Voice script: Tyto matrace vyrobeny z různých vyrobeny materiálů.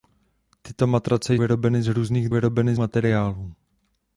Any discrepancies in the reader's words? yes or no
no